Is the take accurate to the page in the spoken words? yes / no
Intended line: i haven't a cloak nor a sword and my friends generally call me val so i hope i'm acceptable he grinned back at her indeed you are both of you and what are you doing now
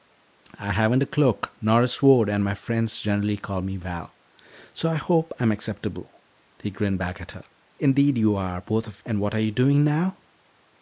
no